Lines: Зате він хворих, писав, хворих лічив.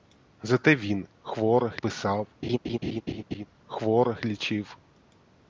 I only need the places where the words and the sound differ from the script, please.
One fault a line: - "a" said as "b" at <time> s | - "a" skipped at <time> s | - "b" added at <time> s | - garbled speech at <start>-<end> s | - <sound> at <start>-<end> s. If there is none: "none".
- laugh at 2.4-3.5 s